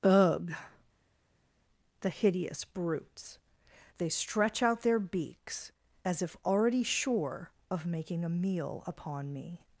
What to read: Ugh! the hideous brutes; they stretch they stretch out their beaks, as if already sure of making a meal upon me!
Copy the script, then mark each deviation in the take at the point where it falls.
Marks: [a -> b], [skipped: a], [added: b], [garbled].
Ugh! the hideous brutes; they stretch [skipped: they stretch] out their beaks, as if already sure of making a meal upon me!